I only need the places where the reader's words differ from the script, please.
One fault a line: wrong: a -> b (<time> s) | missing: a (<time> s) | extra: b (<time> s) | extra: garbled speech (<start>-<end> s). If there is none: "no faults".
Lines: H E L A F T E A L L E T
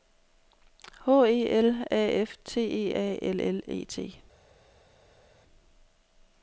no faults